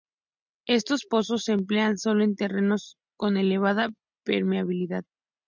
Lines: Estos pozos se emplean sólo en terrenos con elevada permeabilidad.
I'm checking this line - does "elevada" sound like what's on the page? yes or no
yes